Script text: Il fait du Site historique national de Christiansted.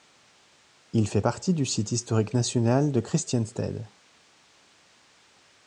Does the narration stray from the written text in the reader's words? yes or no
yes